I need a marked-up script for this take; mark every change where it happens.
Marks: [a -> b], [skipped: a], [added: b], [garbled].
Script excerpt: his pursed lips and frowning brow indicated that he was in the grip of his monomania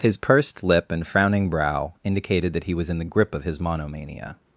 his pursed [lips -> lip] and frowning brow indicated that he was in the grip of his monomania